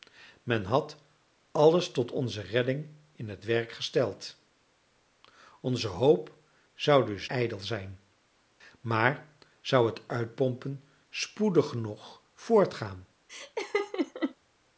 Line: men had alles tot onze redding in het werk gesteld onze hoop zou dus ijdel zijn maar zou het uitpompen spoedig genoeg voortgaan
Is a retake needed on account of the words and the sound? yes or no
yes